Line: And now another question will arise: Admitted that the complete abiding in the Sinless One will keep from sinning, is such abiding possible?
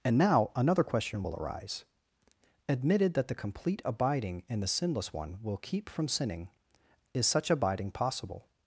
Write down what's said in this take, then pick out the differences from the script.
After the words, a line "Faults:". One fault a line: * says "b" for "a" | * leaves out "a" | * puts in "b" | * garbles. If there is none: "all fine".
And now another question will arise: Admitted that the complete abiding in the Sinless One will keep from sinning, is such abiding possible?
Faults:
all fine